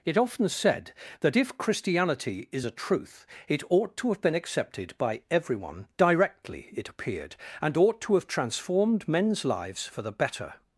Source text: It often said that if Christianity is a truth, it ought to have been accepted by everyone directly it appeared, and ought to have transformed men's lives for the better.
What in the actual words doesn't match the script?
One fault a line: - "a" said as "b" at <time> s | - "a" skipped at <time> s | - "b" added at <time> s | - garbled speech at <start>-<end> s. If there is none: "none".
none